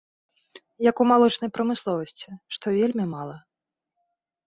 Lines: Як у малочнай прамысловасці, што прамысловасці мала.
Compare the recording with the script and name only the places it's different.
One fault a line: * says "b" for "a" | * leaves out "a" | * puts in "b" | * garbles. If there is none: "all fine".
* says "вельмі" for "прамысловасці"